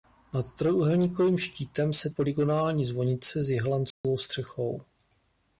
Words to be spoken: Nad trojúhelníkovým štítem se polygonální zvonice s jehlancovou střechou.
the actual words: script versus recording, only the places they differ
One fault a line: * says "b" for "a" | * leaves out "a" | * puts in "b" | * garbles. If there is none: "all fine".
all fine